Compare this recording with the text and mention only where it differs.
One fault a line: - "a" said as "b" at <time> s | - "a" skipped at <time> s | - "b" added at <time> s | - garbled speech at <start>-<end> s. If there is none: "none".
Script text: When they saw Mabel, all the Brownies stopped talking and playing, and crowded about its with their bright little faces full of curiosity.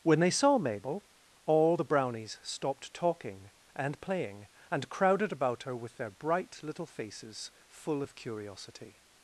- "its" said as "her" at 5.6 s